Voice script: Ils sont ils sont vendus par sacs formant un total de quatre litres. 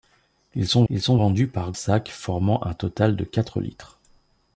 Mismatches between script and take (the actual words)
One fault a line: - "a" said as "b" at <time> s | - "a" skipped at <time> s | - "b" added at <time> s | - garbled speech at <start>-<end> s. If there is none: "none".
none